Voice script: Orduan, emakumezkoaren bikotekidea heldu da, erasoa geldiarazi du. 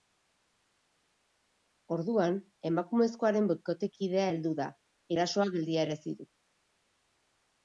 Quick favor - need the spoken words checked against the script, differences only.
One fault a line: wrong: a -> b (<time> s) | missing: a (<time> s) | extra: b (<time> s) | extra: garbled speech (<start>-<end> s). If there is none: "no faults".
no faults